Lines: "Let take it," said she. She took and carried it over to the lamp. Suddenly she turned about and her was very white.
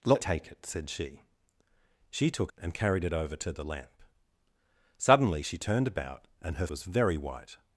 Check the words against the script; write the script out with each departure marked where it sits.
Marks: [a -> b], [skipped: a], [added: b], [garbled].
"Let take it," said she. She took and carried it over to the lamp. Suddenly she turned about and her was very white.